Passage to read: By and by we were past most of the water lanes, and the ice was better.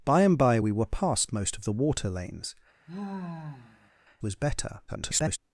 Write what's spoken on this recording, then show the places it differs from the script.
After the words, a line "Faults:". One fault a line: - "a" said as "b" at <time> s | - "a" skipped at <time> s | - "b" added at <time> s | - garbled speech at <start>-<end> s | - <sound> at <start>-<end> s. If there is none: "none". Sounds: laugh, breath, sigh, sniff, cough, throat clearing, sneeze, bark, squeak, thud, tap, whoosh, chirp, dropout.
By and by we were past most of the water lanes, was better. [garbled]
Faults:
- "and the ice" skipped at 2.5 s
- sigh at 2.9-3.9 s
- garbled speech at 4.9-5.4 s